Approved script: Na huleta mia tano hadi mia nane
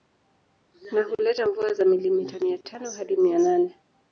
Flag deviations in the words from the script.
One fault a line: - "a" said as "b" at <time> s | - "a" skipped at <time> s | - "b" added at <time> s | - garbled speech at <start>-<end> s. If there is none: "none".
- "mvua za milimita" added at 1.4 s